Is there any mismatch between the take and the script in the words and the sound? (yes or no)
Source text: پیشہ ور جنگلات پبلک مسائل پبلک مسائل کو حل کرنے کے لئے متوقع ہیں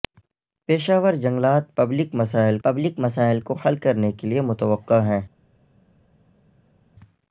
no